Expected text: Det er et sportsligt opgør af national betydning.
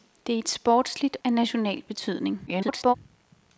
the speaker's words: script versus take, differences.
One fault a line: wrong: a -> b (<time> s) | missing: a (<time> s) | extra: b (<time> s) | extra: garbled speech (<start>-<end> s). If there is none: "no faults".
missing: opgør (1.2 s)
extra: garbled speech (2.5-2.9 s)